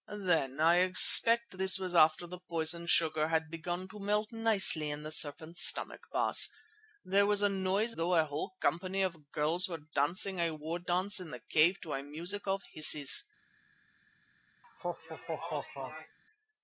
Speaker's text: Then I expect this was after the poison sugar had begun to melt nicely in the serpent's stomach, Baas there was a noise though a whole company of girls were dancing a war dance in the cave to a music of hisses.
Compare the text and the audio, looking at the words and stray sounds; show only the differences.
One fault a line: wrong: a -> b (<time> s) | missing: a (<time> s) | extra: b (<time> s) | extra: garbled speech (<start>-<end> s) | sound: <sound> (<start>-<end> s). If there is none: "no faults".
sound: laugh (14.6-16.2 s)